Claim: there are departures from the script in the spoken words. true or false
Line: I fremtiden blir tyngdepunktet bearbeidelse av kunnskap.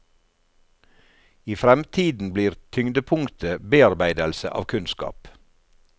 false